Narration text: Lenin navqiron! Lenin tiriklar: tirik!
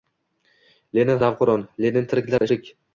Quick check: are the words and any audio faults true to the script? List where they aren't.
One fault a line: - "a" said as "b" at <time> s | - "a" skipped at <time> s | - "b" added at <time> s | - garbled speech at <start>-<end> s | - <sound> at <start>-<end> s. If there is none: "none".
- dropout at 2.4-2.4 s